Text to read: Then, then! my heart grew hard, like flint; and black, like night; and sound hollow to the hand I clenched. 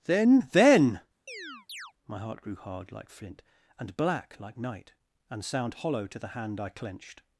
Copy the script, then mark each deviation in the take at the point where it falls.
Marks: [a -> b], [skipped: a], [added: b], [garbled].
Then, then! my heart grew hard, like flint; and black, like night; and sound hollow to the hand I clenched.